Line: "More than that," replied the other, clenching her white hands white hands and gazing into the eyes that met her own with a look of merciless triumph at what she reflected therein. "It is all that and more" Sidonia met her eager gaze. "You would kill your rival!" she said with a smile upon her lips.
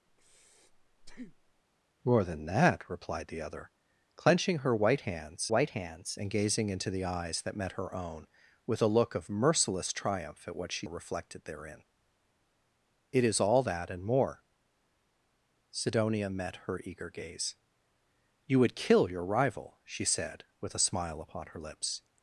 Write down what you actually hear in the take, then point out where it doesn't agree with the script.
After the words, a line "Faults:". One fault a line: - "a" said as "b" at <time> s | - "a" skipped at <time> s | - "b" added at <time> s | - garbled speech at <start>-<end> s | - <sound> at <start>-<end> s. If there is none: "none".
"More than that," replied the other, clenching her white hands white hands and gazing into the eyes that met her own with a look of merciless triumph at what she reflected therein. "It is all that and more" Sidonia met her eager gaze. "You would kill your rival!" she said with a smile upon her lips.
Faults:
- breath at 0.1-1.6 s